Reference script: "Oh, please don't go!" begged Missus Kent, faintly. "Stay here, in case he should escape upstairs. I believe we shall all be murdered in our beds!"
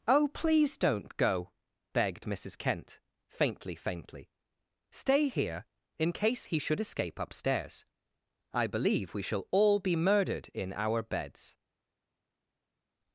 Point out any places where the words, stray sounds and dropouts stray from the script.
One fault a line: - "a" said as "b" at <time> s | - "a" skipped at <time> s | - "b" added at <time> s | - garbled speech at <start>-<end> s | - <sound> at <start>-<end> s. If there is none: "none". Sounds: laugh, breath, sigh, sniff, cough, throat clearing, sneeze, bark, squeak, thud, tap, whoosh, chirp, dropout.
- "faintly" added at 3.8 s